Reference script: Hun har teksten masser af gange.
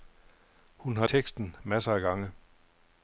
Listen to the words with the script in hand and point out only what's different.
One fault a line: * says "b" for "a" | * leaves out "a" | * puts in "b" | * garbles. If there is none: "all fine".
all fine